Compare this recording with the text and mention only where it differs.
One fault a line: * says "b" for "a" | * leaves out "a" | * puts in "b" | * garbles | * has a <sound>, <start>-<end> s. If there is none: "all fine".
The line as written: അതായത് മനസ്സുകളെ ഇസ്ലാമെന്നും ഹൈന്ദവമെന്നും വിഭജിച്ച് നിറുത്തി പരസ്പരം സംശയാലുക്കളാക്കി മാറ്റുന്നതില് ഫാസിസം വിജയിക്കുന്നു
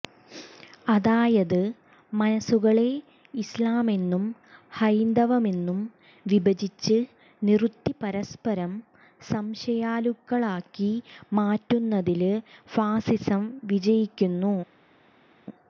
all fine